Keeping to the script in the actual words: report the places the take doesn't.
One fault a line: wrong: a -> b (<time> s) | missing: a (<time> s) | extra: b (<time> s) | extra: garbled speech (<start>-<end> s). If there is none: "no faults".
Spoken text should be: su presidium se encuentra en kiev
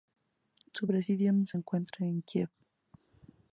no faults